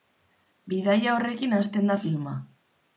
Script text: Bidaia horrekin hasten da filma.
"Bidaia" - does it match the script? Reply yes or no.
yes